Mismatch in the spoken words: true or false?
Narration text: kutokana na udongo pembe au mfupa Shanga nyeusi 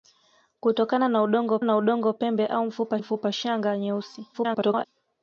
true